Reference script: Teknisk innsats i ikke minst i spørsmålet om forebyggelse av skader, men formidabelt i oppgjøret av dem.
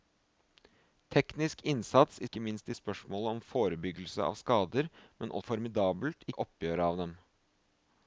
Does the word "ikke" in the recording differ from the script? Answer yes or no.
no